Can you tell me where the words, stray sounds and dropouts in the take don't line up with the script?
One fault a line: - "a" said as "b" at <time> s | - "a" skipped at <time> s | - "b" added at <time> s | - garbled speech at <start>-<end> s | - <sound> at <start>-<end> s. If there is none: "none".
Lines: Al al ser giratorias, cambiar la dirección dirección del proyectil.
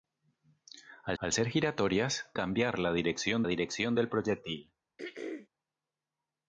- throat clearing at 5.0-5.5 s